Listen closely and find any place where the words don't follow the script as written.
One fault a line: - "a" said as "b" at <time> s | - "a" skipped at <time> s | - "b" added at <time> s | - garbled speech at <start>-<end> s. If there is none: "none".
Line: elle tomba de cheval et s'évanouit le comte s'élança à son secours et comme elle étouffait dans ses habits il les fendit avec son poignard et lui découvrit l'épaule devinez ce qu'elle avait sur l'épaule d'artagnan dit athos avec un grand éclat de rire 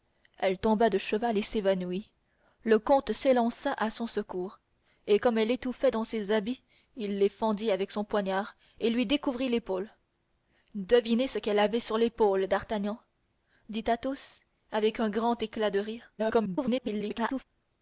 - garbled speech at 16.2-17.4 s